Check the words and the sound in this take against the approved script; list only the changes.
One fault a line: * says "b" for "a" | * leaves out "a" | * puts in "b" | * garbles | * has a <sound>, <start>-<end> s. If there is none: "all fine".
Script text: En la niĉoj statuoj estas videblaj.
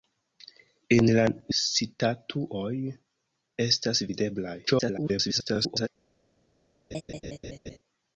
* leaves out "niĉoj"
* garbles
* has a laugh, 6.9-7.8 s